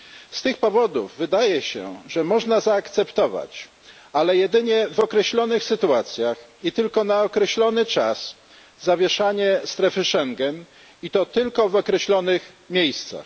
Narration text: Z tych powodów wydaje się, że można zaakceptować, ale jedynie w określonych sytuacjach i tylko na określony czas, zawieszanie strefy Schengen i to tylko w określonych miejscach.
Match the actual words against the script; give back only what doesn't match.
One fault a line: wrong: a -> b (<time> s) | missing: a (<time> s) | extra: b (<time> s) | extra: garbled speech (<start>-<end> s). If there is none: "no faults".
no faults